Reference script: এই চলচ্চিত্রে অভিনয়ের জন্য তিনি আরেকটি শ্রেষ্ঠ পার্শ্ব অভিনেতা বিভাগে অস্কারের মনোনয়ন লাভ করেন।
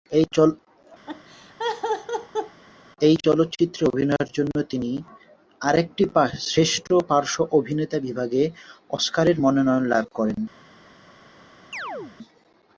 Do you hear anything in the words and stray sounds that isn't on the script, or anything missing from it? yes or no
yes